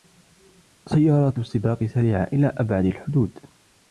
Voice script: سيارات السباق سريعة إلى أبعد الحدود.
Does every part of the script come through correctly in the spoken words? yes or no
yes